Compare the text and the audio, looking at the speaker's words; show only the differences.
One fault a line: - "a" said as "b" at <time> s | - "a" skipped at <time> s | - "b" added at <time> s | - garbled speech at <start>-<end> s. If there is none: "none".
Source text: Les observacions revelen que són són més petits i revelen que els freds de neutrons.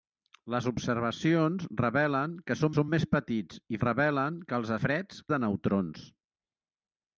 none